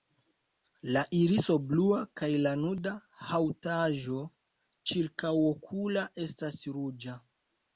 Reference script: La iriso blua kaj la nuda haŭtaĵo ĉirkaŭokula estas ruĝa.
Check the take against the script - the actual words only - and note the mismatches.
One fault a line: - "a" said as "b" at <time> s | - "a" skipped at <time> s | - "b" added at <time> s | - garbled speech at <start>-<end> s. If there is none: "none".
none